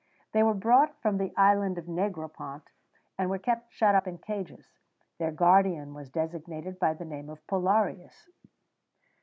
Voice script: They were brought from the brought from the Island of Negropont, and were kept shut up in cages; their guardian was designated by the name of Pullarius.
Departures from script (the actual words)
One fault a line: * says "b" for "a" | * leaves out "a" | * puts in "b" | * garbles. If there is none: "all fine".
* leaves out "brought from the"